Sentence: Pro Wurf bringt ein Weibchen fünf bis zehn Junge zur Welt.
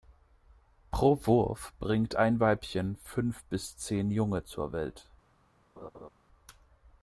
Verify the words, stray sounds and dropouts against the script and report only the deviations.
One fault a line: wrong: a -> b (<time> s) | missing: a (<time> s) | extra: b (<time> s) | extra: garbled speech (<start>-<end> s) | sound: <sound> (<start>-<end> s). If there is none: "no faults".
sound: laugh (5.8-6.1 s)